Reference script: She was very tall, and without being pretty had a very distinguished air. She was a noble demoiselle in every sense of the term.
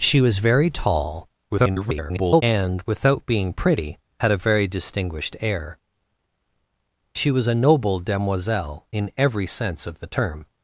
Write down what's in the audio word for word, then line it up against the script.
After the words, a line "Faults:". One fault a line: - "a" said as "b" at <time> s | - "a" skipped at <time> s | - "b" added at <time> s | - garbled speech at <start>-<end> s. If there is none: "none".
She was very tall, [garbled] and without being pretty had a very distinguished air. She was a noble demoiselle in every sense of the term.
Faults:
- garbled speech at 1.5-2.4 s